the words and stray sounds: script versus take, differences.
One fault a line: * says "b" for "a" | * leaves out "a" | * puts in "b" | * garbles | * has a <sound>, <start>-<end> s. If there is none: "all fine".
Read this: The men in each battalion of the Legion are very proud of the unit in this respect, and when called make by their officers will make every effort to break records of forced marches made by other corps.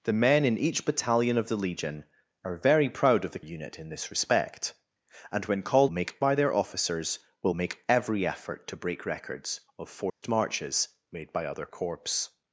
* has a dropout, 10.1-10.2 s